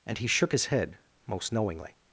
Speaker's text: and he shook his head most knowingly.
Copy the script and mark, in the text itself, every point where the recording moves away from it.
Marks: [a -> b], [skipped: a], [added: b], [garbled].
and he shook his head most knowingly.